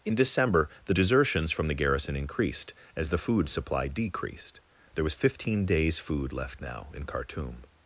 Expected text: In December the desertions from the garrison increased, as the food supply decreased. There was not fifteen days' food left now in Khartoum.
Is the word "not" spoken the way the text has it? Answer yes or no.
no